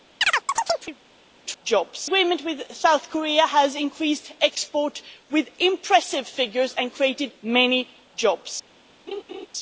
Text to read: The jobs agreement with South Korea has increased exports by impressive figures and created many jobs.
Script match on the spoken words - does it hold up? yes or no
yes